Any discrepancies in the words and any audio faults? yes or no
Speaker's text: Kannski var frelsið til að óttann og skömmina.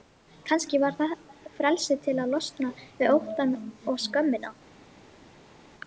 yes